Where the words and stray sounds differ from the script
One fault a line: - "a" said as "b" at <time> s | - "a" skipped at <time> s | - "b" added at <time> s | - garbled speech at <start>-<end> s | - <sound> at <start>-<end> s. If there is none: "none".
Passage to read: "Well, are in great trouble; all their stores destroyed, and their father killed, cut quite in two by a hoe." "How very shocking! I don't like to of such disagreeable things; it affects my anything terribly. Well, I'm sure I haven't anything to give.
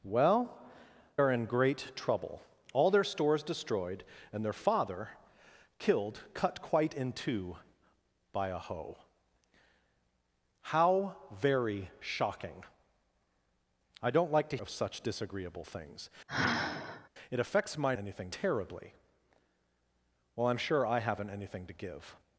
- sigh at 16.3-17.1 s